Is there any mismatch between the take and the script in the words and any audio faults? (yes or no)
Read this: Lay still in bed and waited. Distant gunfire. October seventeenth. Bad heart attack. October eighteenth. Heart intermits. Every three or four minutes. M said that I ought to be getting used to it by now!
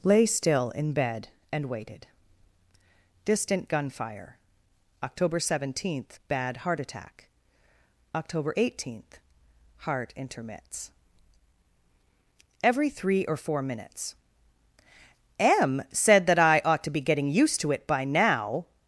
no